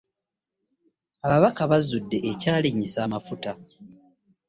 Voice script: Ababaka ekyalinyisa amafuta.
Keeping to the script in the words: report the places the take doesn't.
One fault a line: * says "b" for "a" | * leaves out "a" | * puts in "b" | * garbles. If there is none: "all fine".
* puts in "bazudde"